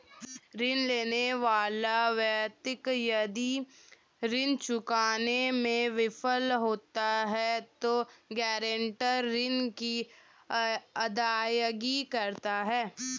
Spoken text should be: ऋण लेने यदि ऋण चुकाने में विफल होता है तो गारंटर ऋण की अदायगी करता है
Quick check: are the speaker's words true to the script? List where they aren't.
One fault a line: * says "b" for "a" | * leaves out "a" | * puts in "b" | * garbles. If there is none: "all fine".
* puts in "वाला व्यक्ति"